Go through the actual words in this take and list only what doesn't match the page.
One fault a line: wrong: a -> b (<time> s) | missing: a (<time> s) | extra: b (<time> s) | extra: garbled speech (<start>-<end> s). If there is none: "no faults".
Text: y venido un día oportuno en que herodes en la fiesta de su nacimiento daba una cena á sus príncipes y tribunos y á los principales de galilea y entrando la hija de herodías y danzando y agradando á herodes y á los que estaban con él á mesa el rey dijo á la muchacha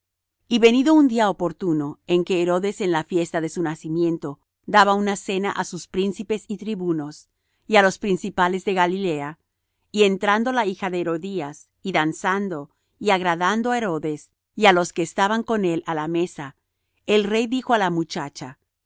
extra: la (15.9 s)